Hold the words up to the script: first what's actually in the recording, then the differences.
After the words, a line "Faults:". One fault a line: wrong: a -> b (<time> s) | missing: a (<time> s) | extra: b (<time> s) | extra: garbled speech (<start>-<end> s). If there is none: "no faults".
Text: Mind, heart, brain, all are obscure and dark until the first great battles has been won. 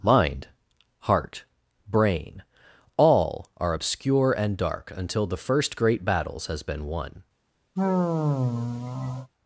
Mind, heart, brain, all are obscure and dark until the first great battles has been won.
Faults:
no faults